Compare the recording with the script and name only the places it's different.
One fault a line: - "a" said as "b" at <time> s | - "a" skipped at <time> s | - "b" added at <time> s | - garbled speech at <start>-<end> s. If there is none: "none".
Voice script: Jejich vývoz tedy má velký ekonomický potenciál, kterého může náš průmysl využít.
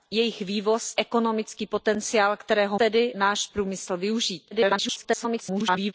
- "tedy má velký" skipped at 0.9 s
- "může" said as "tedy" at 2.8 s
- garbled speech at 4.5-5.9 s